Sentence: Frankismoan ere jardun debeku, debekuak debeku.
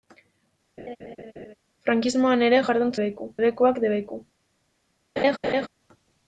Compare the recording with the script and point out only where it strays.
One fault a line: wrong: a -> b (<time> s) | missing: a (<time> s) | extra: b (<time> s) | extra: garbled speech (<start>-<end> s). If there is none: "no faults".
no faults